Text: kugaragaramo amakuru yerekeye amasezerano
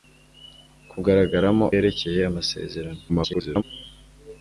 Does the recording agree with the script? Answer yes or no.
no